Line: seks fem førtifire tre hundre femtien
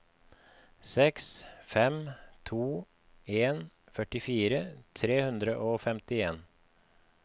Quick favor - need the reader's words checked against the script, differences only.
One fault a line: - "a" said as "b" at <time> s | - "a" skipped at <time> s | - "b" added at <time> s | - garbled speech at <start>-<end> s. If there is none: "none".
- "to en" added at 2.5 s
- "og" added at 5.7 s